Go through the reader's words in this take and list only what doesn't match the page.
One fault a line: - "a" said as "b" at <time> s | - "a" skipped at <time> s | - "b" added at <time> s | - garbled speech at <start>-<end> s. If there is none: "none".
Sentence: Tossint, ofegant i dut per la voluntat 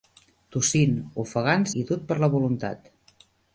none